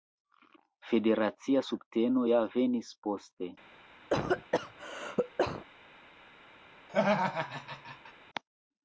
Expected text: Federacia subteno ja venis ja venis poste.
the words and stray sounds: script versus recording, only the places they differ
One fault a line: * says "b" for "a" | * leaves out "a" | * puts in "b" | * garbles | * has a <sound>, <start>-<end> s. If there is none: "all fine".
* leaves out "ja venis"
* has a cough, 4.1-5.6 s
* has a laugh, 6.9-8.1 s